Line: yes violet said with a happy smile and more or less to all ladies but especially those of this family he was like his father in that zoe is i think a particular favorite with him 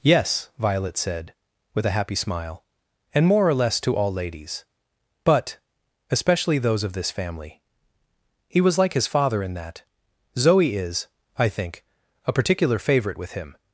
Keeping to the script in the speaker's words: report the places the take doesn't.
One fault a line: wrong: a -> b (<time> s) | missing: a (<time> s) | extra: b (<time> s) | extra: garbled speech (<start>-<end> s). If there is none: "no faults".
no faults